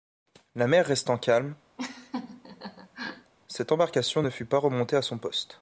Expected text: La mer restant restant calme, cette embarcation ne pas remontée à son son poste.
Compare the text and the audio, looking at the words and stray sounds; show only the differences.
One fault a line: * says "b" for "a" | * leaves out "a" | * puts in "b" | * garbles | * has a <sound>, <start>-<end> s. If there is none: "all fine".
* leaves out "restant"
* has a laugh, 1.8-3.3 s
* puts in "fut"
* leaves out "son"